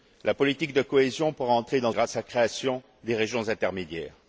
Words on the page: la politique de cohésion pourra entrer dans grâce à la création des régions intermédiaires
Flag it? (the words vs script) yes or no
no